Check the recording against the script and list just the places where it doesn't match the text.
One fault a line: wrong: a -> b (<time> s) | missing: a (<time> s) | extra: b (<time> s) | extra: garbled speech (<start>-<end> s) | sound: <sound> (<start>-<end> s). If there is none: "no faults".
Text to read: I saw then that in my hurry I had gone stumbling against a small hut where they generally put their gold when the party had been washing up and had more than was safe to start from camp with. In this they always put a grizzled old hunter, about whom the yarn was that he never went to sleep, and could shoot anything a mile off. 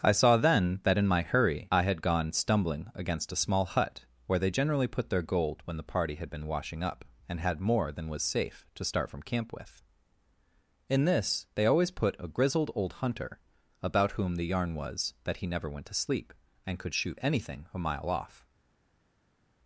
no faults